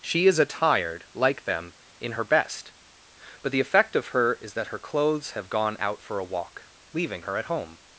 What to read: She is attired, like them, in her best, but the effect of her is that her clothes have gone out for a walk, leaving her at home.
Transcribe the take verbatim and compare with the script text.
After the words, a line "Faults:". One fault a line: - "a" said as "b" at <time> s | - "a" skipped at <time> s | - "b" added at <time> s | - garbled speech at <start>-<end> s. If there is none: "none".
She is attired, like them, in her best, but the effect of her is that her clothes have gone out for a walk, leaving her at home.
Faults:
none